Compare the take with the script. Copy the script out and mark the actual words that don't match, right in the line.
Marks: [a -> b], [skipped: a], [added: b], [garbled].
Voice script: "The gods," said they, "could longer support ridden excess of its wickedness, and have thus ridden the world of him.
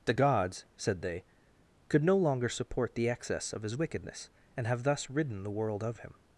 "The gods," said they, "could [added: no] longer support [ridden -> the] excess of [its -> his] wickedness, and have thus ridden the world of him.